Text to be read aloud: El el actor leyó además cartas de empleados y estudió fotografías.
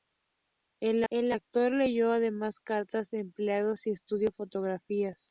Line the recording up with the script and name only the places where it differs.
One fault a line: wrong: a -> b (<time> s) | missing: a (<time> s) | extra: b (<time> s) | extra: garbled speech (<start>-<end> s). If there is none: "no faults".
no faults